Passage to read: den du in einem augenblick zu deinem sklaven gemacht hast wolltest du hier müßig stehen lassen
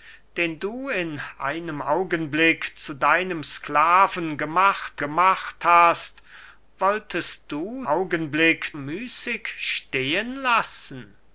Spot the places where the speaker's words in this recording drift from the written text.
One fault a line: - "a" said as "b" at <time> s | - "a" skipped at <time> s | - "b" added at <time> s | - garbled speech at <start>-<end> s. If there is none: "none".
- "gemacht" added at 5.0 s
- "hier" said as "augenblick" at 7.8 s